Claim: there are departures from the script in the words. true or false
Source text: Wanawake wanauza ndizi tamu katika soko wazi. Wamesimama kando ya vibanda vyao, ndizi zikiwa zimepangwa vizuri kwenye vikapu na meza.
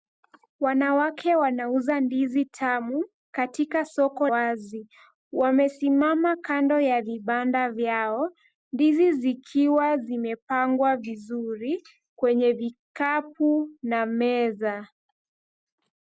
false